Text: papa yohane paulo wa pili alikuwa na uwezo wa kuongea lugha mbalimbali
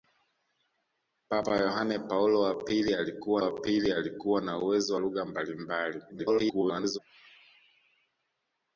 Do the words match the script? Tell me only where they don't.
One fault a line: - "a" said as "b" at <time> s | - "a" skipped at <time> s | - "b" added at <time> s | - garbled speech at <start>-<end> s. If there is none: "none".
- "wa pili alikuwa" added at 3.4 s
- "wa kuongea" skipped at 5.0 s
- garbled speech at 6.1-7.0 s